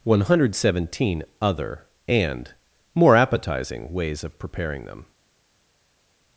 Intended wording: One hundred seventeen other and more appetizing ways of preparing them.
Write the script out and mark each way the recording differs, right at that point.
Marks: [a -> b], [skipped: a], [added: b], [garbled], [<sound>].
One hundred seventeen other and more appetizing ways of preparing them.